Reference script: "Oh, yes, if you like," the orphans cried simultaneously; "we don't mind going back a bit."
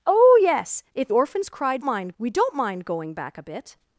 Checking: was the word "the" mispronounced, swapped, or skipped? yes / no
yes